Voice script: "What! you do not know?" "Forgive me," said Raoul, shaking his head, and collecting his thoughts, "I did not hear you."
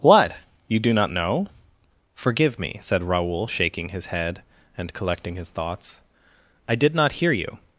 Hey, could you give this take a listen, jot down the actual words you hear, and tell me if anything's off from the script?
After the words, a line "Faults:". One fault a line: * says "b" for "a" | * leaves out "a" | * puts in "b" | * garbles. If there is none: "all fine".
"What! you do not know?" "Forgive me," said Raoul, shaking his head, and collecting his thoughts, "I did not hear you."
Faults:
all fine